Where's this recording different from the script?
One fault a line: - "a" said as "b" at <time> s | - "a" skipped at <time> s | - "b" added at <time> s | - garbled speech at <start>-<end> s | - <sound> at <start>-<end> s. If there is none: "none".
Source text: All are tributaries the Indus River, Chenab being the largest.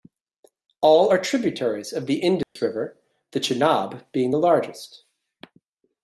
- "of" added at 1.9 s
- dropout at 2.4-2.6 s
- "the" added at 3.3 s